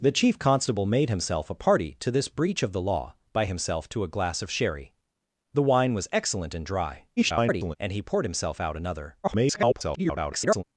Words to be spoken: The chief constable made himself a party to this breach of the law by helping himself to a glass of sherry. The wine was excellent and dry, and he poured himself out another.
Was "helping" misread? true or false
true